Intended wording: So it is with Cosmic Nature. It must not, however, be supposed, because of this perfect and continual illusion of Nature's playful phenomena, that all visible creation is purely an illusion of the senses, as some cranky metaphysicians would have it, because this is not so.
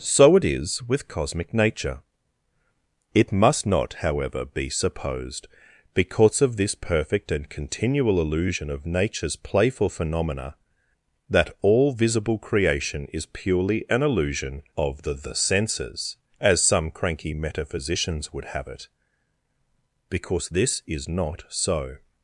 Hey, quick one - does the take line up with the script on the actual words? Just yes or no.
no